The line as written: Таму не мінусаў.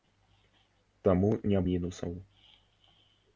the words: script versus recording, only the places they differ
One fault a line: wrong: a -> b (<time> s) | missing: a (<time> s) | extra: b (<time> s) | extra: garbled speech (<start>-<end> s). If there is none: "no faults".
no faults